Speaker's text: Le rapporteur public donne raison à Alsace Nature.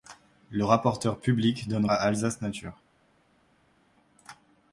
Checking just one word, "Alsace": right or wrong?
right